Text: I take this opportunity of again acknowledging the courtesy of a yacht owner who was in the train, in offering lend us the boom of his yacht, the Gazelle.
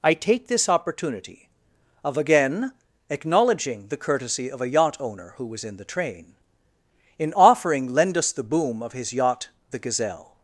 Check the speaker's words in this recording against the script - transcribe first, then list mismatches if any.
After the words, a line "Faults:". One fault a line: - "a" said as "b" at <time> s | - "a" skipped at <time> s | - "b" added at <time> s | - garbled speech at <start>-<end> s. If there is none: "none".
I take this opportunity of again acknowledging the courtesy of a yacht owner who was in the train, in offering lend us the boom of his yacht, the Gazelle.
Faults:
none